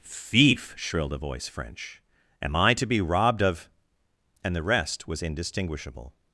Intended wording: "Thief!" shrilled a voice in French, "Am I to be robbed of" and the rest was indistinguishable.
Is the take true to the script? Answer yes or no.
no